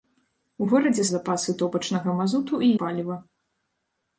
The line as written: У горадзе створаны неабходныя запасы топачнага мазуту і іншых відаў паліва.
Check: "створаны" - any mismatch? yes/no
yes